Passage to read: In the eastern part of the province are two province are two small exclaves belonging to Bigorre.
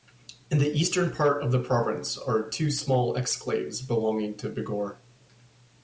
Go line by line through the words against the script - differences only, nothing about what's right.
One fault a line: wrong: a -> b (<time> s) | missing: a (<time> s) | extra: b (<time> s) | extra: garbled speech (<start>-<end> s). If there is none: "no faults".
missing: province are two (2.7 s)